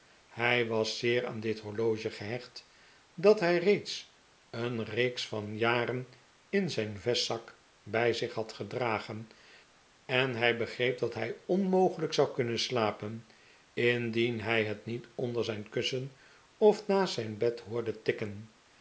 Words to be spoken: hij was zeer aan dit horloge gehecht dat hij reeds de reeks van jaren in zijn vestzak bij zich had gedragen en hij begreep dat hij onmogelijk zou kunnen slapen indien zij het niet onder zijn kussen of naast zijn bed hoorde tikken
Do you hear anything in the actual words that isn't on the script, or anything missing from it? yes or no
yes